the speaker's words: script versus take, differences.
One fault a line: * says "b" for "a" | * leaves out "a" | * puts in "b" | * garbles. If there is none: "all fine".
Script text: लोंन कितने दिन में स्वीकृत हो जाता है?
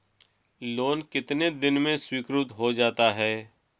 all fine